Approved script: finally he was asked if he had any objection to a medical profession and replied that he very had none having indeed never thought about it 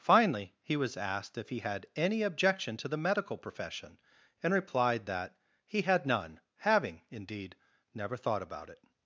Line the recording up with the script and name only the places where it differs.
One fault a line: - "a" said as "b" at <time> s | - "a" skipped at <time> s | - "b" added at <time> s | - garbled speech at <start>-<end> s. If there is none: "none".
- "a" said as "the" at 2.9 s
- "very" skipped at 5.8 s